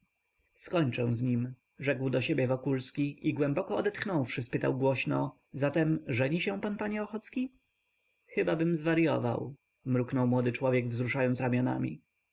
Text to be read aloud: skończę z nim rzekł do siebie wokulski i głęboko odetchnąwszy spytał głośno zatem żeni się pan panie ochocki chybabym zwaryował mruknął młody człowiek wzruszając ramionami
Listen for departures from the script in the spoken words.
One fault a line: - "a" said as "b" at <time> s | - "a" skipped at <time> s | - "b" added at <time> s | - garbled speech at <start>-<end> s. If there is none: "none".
none